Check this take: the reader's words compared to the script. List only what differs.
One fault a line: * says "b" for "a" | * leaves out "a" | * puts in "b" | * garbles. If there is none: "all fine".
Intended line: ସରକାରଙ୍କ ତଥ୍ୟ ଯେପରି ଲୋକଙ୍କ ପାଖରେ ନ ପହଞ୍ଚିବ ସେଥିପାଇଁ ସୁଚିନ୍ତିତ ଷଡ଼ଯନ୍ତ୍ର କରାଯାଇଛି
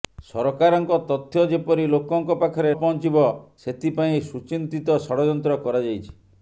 * leaves out "ନ"